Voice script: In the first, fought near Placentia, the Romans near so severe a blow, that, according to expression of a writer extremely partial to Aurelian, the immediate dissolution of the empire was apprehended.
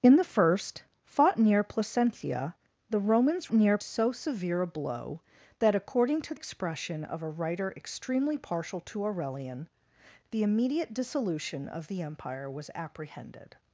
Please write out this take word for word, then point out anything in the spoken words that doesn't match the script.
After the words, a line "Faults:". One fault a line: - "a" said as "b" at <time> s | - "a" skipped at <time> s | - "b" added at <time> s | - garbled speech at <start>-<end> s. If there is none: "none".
In the first, fought near Placentia, the Romans near so severe a blow, that, according to expression of a writer extremely partial to Aurelian, the immediate dissolution of the empire was apprehended.
Faults:
none